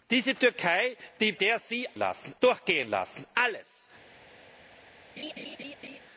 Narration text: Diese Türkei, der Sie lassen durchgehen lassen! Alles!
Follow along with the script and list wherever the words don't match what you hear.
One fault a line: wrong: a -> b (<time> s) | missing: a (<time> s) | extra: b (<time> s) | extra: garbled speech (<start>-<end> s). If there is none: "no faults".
no faults